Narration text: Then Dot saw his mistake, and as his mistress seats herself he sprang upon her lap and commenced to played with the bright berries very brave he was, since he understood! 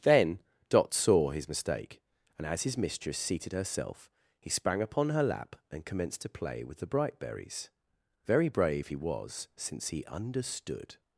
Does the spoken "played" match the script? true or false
false